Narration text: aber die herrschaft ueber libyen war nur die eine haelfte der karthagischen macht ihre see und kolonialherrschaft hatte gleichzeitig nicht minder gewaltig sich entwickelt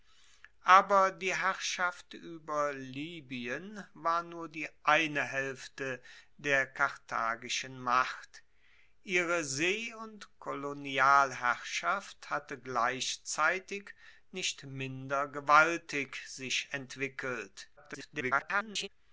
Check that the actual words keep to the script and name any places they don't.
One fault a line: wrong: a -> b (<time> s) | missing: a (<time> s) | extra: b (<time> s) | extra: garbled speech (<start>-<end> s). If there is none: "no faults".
extra: garbled speech (17.8-18.9 s)